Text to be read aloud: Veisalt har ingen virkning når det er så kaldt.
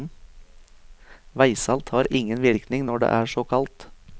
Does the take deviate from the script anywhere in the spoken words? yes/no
no